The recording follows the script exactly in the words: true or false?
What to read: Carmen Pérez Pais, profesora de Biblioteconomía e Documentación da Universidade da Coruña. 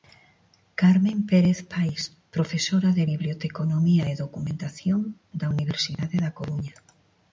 true